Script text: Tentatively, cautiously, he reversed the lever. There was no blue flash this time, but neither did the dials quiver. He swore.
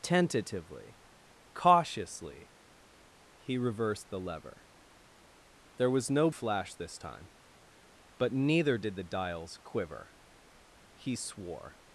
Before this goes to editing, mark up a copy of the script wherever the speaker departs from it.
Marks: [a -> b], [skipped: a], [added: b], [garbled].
Tentatively, cautiously, he reversed the lever. There was no [skipped: blue] flash this time, but neither did the dials quiver. He swore.